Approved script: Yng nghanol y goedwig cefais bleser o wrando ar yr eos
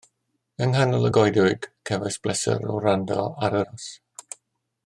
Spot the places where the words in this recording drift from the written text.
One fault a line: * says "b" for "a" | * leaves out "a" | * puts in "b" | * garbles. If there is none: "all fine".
* leaves out "yr"